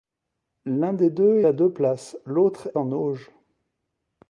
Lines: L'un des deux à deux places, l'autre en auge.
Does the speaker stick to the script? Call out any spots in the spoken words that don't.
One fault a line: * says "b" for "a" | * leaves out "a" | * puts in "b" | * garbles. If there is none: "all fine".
all fine